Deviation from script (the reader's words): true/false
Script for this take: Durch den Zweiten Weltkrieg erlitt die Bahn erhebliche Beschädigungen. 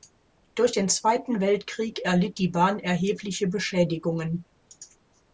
false